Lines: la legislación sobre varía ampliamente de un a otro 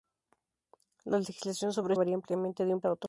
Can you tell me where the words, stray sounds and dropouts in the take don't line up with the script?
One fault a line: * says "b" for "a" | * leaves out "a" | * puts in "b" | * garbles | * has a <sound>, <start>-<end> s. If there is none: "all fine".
all fine